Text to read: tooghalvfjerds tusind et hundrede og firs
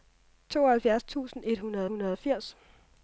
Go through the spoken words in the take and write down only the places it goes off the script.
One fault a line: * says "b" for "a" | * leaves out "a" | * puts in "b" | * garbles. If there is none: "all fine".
* puts in "hundrede"